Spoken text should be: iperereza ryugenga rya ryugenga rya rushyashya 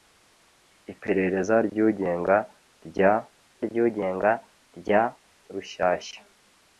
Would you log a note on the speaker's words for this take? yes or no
no